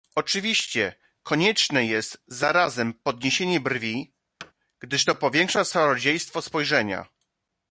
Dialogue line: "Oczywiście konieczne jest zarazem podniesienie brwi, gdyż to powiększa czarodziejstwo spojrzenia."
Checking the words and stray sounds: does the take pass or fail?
fail